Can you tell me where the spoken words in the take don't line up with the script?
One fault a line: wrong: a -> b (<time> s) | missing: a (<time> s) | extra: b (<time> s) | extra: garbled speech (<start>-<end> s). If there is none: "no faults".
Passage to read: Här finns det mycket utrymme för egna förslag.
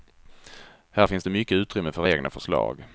no faults